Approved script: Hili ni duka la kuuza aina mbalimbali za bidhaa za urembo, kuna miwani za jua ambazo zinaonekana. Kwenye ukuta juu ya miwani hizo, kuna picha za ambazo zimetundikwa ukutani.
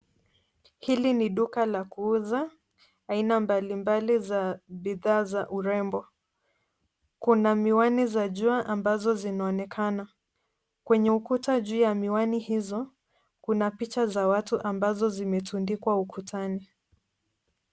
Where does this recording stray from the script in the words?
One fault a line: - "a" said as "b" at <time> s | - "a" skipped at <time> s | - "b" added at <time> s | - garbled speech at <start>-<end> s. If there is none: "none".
- "watu" added at 14.3 s